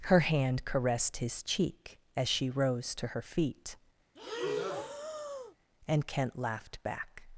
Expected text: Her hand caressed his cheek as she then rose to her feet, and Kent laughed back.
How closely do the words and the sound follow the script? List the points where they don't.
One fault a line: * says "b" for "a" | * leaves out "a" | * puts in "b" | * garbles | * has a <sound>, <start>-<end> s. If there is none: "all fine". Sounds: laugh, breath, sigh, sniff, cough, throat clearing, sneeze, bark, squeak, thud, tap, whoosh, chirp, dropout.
* leaves out "then"
* has a breath, 4.2-5.6 s